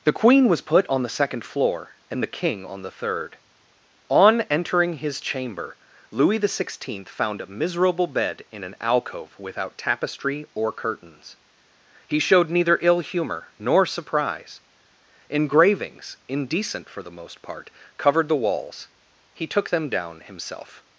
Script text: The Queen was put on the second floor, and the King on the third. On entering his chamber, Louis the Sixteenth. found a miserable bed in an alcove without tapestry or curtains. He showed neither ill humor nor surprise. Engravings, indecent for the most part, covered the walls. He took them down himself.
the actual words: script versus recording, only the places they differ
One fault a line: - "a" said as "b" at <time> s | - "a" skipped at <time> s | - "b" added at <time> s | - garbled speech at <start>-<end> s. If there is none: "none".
none